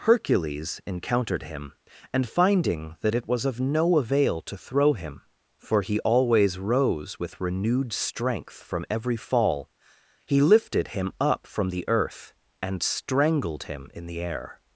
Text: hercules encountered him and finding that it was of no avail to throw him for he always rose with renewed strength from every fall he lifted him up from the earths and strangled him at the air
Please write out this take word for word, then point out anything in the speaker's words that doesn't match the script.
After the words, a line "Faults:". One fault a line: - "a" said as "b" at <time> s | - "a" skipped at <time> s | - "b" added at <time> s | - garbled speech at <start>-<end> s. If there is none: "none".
hercules encountered him and finding that it was of no avail to throw him for he always rose with renewed strength from every fall he lifted him up from the earth and strangled him in the air
Faults:
- "earths" said as "earth" at 11.9 s
- "at" said as "in" at 13.9 s